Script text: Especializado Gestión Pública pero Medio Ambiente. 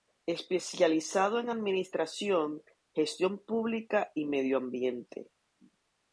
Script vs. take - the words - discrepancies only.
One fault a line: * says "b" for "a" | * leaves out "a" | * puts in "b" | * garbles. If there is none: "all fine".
* puts in "en Administración"
* says "y" for "pero"